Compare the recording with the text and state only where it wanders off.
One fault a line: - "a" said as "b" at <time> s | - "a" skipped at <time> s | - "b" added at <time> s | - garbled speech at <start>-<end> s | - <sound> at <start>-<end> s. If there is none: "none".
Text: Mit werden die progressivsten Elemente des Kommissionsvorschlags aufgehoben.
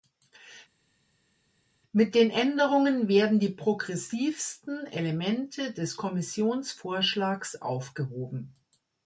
- "den Änderungen" added at 2.1 s